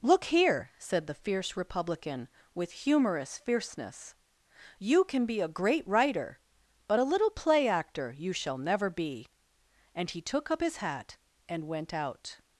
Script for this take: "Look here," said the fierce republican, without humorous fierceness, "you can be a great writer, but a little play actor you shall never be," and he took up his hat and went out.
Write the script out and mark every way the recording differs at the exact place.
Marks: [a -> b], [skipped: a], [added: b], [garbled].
"Look here," said the fierce republican, [without -> with] humorous fierceness, "you can be a great writer, but a little play actor you shall never be," and he took up his hat and went out.